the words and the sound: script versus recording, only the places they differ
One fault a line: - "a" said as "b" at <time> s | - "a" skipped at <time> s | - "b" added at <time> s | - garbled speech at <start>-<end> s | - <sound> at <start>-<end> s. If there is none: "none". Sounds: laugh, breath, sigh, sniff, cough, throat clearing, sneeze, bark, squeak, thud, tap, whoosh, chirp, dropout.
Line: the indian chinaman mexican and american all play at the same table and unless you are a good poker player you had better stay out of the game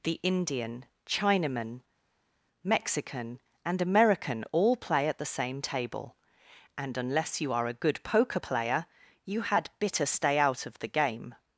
- "better" said as "bitter" at 9.8 s